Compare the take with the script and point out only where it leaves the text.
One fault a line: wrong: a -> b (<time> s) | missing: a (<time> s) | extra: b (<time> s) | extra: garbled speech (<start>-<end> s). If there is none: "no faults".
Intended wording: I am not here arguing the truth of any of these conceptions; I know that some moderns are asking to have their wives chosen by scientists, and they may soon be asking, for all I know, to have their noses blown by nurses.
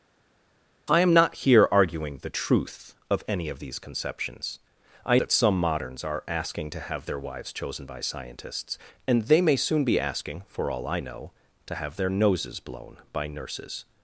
missing: know (5.2 s)